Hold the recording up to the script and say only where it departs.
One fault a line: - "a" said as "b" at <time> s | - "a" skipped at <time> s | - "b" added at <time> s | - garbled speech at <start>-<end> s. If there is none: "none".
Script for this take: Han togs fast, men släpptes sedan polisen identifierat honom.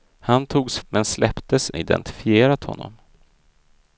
- "fast" skipped at 0.8 s
- "sedan polisen" skipped at 1.8 s